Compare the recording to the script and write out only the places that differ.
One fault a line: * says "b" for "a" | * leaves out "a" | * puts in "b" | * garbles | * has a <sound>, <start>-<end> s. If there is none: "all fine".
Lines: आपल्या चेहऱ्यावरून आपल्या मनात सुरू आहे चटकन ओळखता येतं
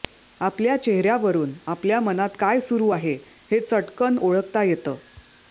* puts in "काय"
* puts in "हे"